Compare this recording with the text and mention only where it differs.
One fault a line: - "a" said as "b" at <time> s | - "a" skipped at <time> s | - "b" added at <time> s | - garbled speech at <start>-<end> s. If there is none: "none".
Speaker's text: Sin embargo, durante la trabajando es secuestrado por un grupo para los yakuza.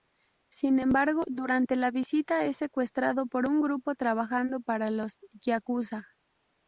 - "trabajando" said as "visita" at 1.9 s
- "trabajando" added at 4.0 s